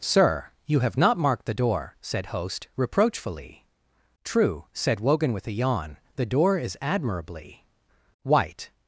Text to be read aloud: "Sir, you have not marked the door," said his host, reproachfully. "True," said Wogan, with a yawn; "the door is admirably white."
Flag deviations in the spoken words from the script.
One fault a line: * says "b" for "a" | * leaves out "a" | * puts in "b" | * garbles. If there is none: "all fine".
* leaves out "his"